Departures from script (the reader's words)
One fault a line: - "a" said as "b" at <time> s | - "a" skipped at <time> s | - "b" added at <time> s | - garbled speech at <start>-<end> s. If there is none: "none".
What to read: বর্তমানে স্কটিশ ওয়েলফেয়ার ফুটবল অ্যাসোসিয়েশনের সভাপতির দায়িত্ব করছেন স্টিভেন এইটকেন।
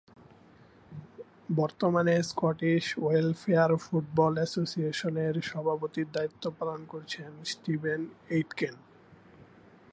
- "পালন" added at 6.6 s